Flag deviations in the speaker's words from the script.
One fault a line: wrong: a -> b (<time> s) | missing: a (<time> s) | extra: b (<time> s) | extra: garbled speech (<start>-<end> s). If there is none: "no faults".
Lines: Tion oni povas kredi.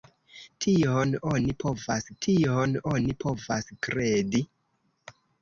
extra: tion oni povas (2.3 s)